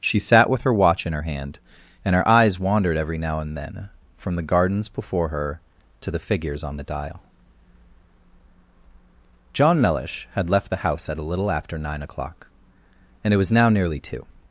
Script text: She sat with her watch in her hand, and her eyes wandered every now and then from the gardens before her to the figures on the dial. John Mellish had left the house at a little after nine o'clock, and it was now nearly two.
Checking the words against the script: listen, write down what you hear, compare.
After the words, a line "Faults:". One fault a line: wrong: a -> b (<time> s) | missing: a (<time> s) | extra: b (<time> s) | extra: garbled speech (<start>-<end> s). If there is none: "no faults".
She sat with her watch in her hand, and her eyes wandered every now and then from the gardens before her to the figures on the dial. John Mellish had left the house at a little after nine o'clock, and it was now nearly two.
Faults:
no faults